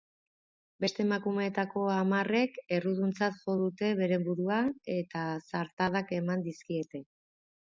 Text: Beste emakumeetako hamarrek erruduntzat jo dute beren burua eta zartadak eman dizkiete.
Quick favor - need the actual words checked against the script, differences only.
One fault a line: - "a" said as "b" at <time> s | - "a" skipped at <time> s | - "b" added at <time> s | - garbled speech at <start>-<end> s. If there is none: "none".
none